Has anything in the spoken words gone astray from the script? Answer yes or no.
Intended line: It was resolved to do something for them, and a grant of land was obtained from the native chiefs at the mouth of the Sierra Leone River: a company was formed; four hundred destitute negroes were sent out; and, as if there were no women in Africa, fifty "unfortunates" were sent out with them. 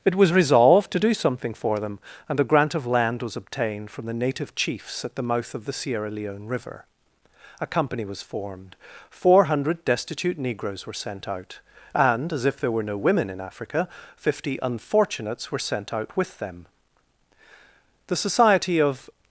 yes